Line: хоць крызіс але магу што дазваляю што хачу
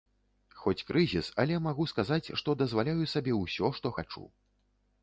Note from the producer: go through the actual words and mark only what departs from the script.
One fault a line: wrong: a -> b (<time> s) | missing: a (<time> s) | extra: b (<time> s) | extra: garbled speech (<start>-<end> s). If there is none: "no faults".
extra: сказаць (1.9 s)
extra: сабе ўсё (3.2 s)